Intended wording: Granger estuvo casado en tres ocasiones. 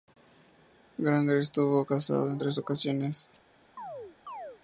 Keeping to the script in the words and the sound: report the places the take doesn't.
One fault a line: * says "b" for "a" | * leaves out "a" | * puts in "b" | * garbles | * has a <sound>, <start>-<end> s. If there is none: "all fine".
* has a chirp, 3.8-4.6 s